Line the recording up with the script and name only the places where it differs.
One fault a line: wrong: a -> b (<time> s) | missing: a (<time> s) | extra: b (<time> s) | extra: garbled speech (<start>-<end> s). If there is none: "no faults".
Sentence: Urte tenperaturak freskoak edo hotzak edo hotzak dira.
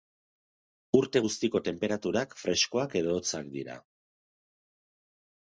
extra: guztiko (1.3 s)
missing: edo hotzak (3.5 s)